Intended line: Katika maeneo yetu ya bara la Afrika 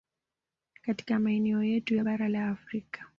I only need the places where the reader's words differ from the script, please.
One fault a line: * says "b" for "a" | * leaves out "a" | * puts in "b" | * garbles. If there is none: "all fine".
all fine